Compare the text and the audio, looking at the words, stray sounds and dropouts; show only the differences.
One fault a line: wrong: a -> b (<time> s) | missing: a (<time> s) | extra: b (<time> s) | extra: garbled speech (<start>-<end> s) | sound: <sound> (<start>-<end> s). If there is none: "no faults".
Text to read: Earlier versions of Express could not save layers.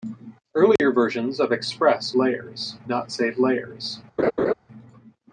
sound: dropout (0.8-0.8 s)
wrong: could -> layers (2.2 s)
sound: laugh (4.2-4.5 s)